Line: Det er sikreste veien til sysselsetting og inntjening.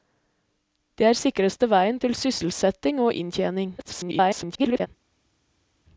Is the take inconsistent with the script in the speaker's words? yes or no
yes